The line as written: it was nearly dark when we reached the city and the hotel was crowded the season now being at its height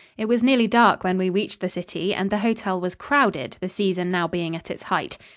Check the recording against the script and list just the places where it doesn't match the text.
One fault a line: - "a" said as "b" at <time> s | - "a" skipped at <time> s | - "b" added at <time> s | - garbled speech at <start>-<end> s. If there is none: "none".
none